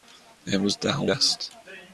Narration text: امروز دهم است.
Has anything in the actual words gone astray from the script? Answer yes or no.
no